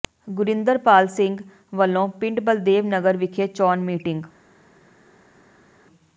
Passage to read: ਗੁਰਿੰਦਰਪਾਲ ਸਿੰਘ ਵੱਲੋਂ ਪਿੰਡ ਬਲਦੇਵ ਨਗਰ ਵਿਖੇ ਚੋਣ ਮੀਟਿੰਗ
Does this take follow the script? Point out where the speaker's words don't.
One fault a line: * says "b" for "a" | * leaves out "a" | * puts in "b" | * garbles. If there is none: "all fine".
all fine